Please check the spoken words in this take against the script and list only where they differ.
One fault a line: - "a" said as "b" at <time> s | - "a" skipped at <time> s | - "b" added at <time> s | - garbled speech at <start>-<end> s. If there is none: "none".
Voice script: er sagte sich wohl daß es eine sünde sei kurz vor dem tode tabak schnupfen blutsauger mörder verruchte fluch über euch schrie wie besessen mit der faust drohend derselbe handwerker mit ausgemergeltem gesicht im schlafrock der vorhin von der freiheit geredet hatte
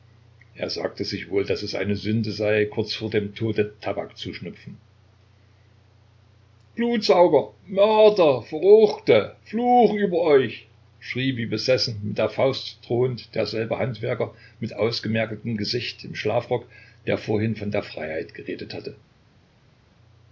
- "zu" added at 4.2 s